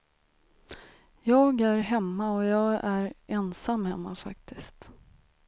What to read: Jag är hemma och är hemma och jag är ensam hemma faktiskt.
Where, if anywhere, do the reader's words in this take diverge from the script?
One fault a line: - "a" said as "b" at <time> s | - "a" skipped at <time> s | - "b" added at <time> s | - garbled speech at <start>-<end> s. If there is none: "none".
- "är hemma och" skipped at 2.4 s